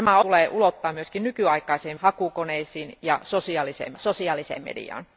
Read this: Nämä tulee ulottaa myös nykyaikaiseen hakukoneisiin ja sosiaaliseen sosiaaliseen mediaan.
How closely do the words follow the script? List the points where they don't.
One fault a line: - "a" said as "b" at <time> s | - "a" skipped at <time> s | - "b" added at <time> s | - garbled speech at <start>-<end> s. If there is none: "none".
none